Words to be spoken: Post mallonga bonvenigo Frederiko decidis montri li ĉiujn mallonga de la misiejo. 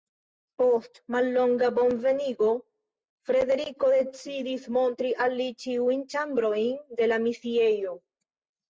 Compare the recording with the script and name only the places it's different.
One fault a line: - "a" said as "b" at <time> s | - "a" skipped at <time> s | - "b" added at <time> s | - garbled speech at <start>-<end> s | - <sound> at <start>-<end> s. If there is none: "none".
- "al" added at 5.3 s
- "mallonga" said as "ĉambrojn" at 6.2 s